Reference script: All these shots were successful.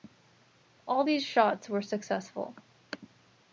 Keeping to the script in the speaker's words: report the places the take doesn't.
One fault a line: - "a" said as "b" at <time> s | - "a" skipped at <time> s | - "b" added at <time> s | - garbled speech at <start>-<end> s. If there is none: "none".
none